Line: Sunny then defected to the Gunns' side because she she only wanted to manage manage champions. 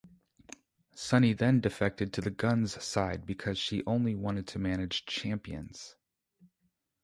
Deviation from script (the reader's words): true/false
true